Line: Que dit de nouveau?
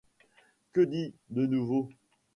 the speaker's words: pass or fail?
pass